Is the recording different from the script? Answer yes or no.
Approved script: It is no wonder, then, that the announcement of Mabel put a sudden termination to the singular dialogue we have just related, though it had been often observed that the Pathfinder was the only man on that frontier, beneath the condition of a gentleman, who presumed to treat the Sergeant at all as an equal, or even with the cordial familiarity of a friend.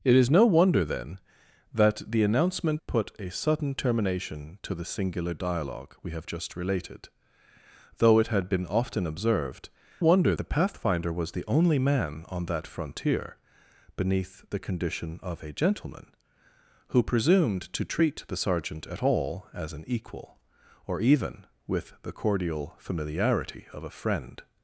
yes